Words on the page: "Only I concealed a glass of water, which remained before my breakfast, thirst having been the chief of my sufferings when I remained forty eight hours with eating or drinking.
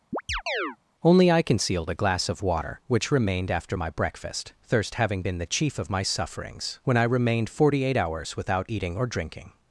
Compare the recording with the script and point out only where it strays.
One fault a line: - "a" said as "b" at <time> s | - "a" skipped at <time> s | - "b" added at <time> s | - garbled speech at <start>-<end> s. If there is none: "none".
- "before" said as "after" at 3.5 s
- "with" said as "without" at 8.4 s